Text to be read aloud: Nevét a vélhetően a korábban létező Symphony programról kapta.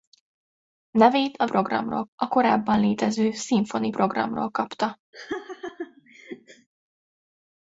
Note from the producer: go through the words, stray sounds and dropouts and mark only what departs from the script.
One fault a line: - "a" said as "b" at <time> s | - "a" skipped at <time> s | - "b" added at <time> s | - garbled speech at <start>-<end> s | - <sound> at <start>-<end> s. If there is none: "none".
- "vélhetően" said as "programról" at 1.4 s
- laugh at 5.1-6.7 s